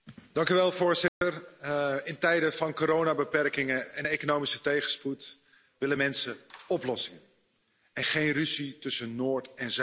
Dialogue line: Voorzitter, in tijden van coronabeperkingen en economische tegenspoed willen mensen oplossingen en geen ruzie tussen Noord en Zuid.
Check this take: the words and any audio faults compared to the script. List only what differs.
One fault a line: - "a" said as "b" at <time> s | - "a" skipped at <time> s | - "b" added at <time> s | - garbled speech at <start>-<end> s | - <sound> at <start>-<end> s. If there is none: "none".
- dropout at 1.1-1.2 s